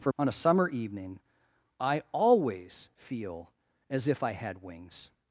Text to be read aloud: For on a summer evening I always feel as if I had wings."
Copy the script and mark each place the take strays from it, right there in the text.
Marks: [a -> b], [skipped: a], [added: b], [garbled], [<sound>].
For on a summer evening I always feel as if I had wings."